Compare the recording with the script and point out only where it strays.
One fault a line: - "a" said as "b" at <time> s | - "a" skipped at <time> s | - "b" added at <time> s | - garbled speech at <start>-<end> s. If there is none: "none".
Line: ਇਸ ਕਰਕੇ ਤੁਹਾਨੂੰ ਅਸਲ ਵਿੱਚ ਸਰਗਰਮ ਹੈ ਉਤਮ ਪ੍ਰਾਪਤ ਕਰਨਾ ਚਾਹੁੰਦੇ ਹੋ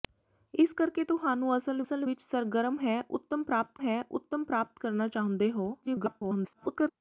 - "ਅਸਲ" added at 1.8 s
- "ਹੈ ਉਤਮ ਪ੍ਰਾਪਤ" added at 3.8 s
- garbled speech at 5.8-6.9 s